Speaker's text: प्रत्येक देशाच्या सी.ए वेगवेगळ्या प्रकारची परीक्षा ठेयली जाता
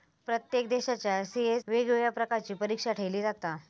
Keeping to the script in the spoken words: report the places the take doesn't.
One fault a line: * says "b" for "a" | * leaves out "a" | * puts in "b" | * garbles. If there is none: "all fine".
all fine